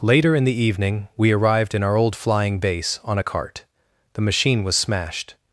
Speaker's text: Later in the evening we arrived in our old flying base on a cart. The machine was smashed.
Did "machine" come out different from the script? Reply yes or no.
no